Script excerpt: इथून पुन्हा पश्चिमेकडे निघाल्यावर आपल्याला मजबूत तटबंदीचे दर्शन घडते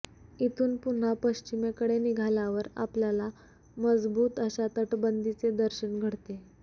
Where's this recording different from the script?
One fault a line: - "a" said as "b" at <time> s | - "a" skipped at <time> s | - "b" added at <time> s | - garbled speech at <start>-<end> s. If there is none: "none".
- "अशा" added at 4.4 s